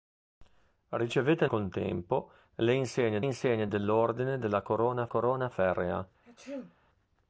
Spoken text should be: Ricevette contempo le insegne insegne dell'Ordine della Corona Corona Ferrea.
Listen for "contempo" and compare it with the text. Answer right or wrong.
right